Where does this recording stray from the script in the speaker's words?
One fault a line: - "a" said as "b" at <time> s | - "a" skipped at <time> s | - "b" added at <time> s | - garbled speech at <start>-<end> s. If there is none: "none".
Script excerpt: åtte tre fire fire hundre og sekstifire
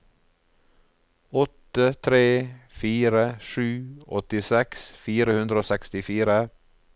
- "sju åttiseks" added at 3.5 s